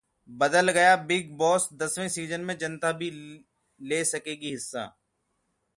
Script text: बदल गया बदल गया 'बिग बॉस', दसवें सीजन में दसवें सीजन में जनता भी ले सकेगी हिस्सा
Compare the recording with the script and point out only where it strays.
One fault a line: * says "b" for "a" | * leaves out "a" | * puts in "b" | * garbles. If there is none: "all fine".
* leaves out "बदल गया"
* leaves out "दसवें सीजन में"